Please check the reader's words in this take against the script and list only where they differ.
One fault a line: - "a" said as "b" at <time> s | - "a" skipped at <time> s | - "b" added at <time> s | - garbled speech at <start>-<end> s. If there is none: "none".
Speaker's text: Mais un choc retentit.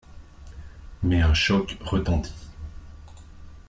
none